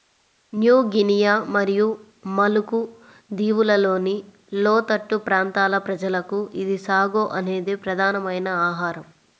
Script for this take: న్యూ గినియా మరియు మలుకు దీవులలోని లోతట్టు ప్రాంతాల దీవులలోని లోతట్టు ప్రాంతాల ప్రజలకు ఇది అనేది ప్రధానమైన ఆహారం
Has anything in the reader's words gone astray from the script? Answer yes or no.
yes